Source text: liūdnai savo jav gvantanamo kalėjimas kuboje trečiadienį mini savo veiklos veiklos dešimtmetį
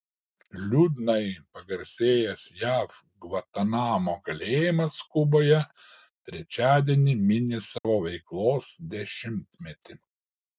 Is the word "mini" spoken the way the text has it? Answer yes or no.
yes